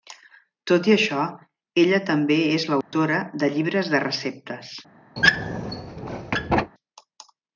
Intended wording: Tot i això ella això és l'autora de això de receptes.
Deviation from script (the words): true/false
true